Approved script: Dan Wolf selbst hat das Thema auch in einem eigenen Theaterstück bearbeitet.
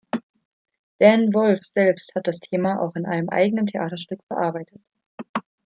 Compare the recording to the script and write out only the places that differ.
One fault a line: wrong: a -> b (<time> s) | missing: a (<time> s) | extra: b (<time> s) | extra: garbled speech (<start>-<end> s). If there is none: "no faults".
no faults